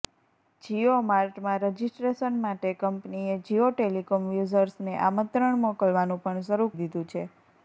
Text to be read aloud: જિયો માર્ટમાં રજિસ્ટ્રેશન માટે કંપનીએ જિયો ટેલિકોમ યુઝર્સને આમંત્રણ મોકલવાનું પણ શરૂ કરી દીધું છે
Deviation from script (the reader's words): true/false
true